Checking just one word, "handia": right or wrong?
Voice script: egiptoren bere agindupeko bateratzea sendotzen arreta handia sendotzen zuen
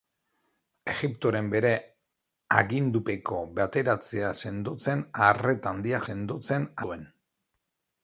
right